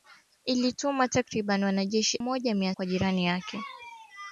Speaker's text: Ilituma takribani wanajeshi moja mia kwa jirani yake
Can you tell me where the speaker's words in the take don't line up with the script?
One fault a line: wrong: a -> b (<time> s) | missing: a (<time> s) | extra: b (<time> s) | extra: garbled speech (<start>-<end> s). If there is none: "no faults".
no faults